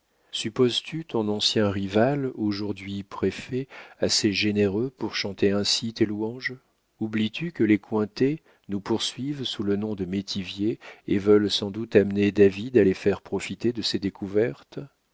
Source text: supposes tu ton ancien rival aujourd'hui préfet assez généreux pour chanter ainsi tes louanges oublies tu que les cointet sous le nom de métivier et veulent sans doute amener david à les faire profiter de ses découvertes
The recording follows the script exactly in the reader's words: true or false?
false